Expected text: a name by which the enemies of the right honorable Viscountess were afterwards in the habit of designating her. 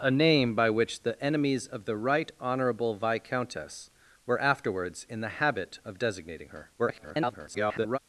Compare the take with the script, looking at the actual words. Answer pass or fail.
fail